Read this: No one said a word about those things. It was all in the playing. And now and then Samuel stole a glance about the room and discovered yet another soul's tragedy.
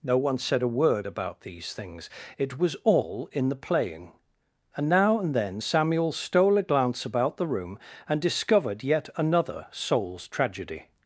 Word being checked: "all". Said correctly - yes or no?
yes